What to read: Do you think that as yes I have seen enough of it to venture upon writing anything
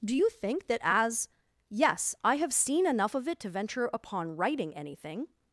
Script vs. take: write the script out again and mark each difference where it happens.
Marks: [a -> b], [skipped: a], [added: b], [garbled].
Do you think that as yes I have seen enough of it to venture upon writing anything